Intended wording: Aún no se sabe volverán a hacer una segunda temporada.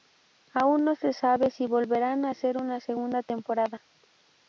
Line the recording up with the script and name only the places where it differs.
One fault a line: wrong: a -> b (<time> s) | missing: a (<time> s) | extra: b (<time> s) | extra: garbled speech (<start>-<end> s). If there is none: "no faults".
extra: si (1.5 s)